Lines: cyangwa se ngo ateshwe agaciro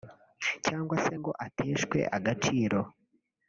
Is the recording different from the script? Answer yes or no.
no